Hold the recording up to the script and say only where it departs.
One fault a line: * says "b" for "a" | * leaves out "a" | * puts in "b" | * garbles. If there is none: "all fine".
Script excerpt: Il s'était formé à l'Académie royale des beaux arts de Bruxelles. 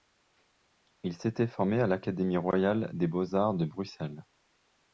all fine